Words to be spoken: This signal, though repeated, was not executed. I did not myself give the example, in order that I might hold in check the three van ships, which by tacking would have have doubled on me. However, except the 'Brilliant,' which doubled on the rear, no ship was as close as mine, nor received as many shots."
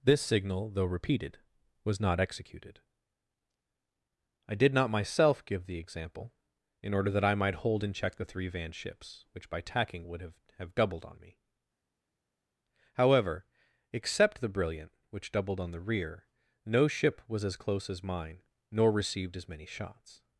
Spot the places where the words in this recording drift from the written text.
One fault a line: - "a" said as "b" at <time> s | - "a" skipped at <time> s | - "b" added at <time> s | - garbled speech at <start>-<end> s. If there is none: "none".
none